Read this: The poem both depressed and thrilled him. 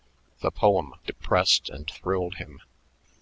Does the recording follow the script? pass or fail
fail